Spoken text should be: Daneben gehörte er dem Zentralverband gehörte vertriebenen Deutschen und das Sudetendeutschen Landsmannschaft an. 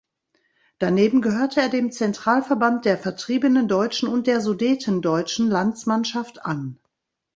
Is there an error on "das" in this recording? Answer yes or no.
yes